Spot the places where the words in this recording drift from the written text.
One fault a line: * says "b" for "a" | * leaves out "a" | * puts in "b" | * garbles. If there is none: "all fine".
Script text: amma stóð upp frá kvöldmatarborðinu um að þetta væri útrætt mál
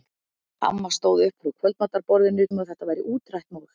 all fine